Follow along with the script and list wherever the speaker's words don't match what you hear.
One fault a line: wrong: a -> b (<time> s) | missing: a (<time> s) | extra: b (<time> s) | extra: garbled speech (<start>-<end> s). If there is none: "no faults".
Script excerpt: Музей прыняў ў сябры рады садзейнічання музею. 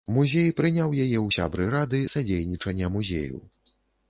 extra: яе (1.0 s)